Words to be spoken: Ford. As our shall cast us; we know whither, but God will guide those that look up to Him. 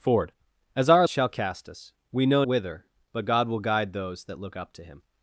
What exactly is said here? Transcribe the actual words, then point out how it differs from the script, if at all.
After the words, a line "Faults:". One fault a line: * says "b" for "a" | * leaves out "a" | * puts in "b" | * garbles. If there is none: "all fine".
Ford. As our shall cast us; we know whither, but God will guide those that look up to Him.
Faults:
all fine